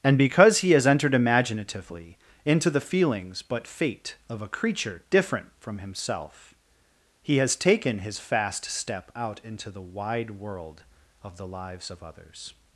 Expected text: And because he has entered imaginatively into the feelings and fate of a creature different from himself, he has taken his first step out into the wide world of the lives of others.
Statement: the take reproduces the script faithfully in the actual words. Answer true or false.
false